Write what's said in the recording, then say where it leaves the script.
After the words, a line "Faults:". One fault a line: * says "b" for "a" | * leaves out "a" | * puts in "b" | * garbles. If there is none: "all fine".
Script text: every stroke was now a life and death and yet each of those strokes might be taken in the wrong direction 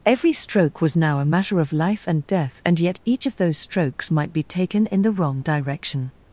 every stroke was now a matter of life and death and yet each of those strokes might be taken in the wrong direction
Faults:
* puts in "matter of"